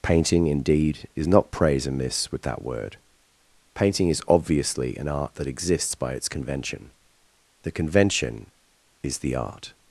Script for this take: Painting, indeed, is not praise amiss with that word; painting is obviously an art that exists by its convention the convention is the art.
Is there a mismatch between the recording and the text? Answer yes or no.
no